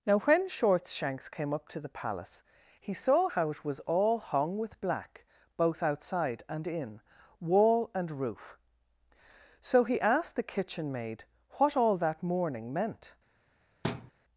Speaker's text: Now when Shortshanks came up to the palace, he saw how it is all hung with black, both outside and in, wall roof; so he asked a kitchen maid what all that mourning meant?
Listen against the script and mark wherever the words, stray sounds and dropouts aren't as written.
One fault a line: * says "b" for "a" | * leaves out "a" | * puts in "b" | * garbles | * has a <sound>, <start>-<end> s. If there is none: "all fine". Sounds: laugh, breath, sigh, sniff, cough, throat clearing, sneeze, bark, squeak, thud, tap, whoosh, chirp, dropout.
* says "was" for "is"
* puts in "and"
* says "the" for "a"
* has a thud, 13.8-14.1 s